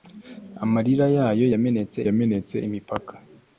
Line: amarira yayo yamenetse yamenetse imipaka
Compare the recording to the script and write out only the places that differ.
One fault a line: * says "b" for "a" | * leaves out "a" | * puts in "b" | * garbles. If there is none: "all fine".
all fine